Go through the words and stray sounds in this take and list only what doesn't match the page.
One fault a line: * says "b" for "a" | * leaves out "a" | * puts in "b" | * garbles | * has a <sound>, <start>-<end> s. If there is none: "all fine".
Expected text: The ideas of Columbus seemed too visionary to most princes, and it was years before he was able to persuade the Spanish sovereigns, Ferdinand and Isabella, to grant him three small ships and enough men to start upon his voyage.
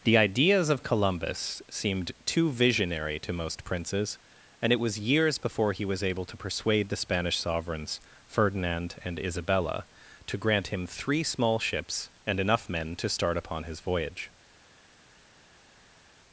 all fine